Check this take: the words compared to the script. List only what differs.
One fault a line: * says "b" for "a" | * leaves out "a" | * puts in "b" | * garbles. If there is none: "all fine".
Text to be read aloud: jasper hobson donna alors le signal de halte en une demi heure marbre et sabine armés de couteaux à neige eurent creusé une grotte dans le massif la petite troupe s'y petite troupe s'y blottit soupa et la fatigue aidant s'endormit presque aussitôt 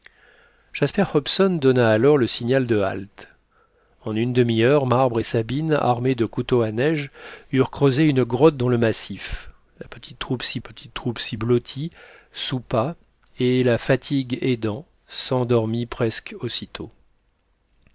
all fine